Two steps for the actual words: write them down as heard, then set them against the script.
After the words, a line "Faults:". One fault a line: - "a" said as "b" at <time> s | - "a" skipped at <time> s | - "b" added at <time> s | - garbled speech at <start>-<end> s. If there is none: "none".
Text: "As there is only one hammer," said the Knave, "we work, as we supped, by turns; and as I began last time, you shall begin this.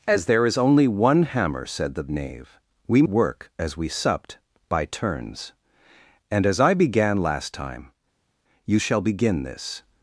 "As there is only one hammer," said the Knave, "we work, as we supped, by turns; and as I began last time, you shall begin this.
Faults:
none